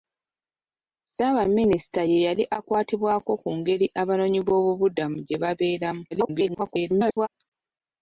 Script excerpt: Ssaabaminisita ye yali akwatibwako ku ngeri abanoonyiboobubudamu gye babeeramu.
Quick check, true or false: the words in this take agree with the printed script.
false